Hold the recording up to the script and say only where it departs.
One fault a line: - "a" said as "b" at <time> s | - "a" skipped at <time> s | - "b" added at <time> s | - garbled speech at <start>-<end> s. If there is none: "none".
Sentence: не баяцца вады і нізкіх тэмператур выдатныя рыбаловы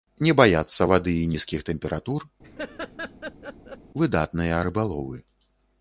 none